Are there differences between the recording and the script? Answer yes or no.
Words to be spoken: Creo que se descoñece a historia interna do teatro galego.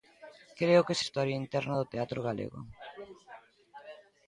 yes